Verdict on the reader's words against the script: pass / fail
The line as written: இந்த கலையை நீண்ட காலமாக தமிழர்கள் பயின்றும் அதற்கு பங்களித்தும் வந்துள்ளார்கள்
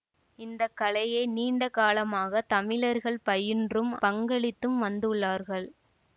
fail